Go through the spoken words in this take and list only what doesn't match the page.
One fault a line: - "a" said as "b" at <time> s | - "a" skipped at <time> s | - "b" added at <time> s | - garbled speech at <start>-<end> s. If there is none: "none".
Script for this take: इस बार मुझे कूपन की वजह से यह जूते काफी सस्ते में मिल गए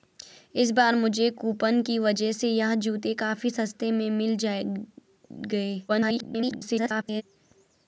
- garbled speech at 5.9-7.2 s